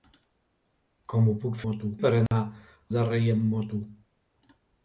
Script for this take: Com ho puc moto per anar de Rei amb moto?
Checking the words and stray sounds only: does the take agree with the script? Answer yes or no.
no